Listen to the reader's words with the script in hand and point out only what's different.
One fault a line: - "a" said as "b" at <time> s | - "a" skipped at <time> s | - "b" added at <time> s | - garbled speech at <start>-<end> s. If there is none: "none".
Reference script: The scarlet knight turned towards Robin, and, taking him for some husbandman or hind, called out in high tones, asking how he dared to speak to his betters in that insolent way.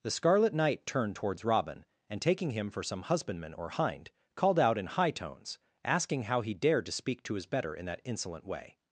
- "betters" said as "better" at 7.5 s